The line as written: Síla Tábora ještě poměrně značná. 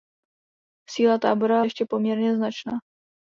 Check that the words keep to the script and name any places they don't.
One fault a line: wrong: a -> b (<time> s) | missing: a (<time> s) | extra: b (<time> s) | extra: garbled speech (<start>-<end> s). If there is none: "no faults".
no faults